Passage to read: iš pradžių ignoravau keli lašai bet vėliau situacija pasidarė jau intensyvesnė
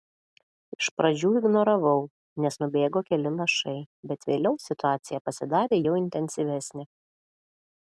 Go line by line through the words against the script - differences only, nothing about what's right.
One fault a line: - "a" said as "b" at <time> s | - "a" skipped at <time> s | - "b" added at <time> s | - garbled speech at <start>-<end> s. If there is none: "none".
- "nes nubėgo" added at 2.5 s